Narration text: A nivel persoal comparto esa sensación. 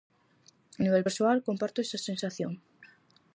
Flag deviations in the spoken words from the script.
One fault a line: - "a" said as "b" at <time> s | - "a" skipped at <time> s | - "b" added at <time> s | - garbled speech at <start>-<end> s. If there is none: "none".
none